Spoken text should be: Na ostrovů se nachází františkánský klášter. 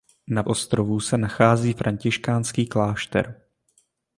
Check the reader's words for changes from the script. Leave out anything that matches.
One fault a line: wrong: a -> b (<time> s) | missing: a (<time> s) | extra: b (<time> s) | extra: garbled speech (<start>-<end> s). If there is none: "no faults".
no faults